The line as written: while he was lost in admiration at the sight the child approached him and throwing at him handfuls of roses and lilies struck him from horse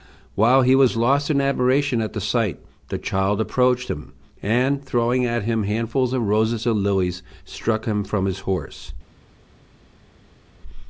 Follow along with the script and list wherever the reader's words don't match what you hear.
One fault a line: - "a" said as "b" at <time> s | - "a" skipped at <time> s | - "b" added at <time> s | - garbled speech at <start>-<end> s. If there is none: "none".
- "his" added at 8.2 s